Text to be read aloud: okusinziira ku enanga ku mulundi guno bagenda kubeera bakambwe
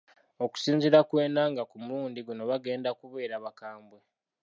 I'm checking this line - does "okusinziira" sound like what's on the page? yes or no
yes